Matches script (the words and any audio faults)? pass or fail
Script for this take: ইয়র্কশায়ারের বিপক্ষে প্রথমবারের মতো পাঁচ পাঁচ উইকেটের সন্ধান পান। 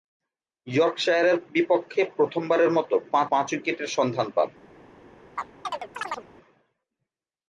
fail